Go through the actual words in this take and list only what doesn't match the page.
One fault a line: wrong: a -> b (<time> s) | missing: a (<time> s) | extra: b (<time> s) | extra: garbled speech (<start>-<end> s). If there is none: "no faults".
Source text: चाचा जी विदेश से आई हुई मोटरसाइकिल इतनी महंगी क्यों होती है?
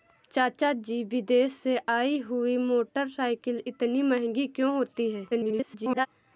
extra: garbled speech (5.3-6.1 s)